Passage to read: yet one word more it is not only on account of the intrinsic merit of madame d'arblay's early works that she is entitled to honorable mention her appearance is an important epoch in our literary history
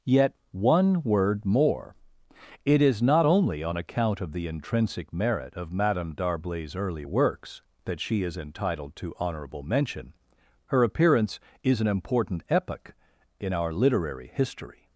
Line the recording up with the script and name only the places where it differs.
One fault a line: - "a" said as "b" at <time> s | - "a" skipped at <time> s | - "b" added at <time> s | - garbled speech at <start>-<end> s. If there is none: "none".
none